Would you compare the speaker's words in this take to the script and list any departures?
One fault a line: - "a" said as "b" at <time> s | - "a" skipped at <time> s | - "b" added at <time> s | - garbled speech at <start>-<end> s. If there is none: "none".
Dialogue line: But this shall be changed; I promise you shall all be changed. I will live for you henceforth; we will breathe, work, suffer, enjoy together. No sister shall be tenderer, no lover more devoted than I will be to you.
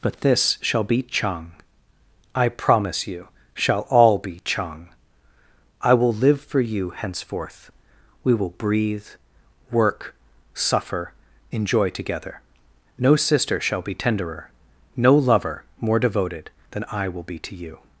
- "changed" said as "chang" at 1.0 s
- "changed" said as "chang" at 4.4 s